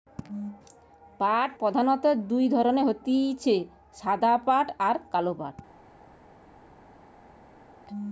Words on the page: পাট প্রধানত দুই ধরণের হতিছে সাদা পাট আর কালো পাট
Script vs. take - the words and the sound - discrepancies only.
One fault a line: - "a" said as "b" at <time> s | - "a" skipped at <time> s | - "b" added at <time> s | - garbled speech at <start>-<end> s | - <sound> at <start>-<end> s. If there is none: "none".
none